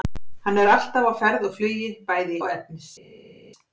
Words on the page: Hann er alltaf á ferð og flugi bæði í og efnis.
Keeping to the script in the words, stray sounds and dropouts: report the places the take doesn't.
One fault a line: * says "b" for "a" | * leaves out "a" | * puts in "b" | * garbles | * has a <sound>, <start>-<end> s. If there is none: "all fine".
all fine